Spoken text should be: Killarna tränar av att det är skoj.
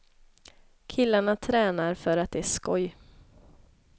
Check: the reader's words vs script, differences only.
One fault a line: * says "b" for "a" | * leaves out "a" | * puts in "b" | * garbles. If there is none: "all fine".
* says "för" for "av"